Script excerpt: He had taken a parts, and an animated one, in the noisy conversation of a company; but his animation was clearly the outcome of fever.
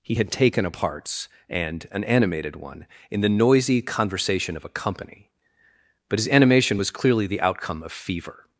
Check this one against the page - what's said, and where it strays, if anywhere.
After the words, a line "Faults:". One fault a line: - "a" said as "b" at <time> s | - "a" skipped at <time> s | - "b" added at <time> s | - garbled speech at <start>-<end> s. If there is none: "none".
He had taken a parts, and an animated one, in the noisy conversation of a company; but his animation was clearly the outcome of fever.
Faults:
none